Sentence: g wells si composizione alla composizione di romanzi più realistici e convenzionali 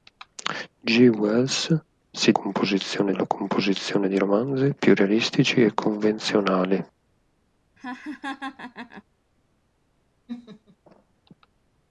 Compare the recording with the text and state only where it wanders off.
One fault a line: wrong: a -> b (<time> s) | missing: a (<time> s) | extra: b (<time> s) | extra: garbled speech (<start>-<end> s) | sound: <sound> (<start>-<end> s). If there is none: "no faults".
sound: laugh (7.8-9.0 s)
sound: laugh (10.3-10.8 s)